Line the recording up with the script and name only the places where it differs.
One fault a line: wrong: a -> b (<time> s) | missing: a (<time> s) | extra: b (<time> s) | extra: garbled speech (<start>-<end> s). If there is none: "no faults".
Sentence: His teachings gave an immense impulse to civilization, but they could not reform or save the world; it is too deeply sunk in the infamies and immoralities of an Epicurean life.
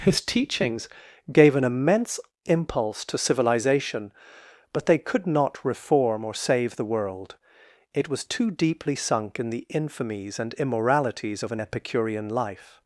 wrong: is -> was (8.1 s)